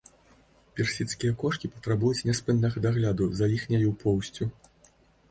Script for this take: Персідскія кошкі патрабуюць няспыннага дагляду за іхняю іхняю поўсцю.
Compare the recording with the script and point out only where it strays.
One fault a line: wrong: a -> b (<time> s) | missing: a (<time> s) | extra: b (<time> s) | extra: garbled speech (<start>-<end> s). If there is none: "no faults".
missing: іхняю (3.9 s)